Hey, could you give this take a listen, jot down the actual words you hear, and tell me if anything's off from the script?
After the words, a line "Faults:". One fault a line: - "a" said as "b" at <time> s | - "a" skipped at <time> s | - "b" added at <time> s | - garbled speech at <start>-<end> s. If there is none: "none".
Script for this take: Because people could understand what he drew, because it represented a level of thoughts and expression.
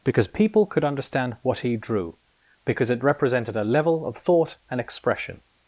Because people could understand what he drew, because it represented a level of thought and expression.
Faults:
- "thoughts" said as "thought" at 4.2 s